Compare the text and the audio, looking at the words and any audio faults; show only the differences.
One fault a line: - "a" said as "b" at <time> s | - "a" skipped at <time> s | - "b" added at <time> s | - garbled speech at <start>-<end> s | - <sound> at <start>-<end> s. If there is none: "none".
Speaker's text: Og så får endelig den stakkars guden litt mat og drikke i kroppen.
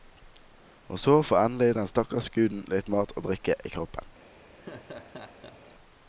- laugh at 4.6-5.7 s